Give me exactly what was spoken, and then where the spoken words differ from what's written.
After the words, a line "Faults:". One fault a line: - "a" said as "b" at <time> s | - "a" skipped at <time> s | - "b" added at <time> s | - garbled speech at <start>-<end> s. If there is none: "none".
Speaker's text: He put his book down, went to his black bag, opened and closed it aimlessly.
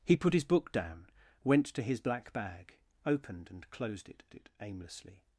He put his book down, went to his black bag, opened and closed it it aimlessly.
Faults:
- "it" added at 4.3 s